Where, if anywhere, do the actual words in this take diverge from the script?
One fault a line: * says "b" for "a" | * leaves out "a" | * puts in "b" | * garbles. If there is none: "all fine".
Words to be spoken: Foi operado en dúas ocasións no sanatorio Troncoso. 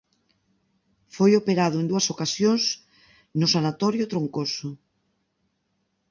all fine